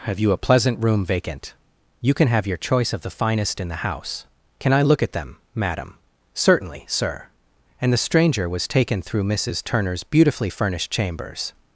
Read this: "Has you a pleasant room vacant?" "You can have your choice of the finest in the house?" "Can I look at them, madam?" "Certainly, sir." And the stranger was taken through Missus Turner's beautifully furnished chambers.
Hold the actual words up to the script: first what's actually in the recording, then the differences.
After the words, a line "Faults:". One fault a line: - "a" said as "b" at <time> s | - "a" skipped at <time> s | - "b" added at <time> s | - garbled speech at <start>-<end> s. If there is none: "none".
"Have you a pleasant room vacant?" "You can have your choice of the finest in the house?" "Can I look at them, madam?" "Certainly, sir." And the stranger was taken through Missus Turner's beautifully furnished chambers.
Faults:
- "Has" said as "Have" at 0.1 s